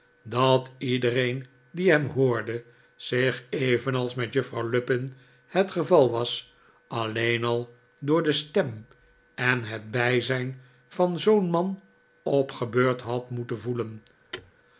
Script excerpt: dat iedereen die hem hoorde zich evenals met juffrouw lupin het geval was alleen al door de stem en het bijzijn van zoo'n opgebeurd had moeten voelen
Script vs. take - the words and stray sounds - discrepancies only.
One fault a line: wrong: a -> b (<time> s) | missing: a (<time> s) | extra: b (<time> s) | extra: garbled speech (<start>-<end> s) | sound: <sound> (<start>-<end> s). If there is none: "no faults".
extra: man (11.5 s)
sound: thud (14.3-14.5 s)